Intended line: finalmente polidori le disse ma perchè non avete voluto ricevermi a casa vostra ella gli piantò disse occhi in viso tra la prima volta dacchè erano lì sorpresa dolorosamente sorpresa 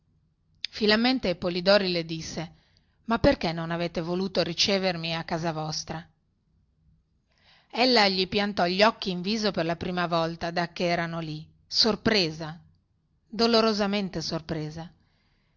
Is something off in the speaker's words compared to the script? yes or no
yes